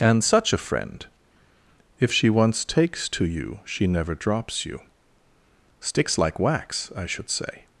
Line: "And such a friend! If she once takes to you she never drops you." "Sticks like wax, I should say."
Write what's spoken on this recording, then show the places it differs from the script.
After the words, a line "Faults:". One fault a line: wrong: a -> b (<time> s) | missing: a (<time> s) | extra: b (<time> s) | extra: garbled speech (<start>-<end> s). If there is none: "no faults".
"And such a friend! If she once takes to you she never drops you." "Sticks like wax, I should say."
Faults:
no faults